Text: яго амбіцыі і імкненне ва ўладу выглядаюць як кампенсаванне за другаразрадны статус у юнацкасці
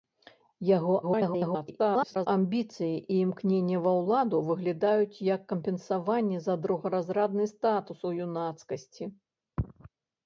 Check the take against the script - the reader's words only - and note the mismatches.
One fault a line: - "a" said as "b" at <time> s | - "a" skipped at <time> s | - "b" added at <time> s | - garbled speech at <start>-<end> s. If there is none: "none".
- garbled speech at 1.0-2.3 s